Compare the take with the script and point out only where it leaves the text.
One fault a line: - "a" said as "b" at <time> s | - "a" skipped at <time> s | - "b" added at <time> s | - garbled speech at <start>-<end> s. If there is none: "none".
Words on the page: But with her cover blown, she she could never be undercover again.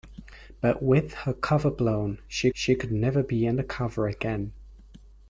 none